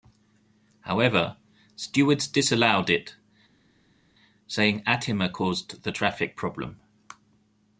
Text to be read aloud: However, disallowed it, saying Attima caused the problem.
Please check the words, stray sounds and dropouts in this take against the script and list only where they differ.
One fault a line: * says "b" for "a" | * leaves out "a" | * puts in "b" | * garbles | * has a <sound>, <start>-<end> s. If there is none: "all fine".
* puts in "stewards"
* puts in "traffic"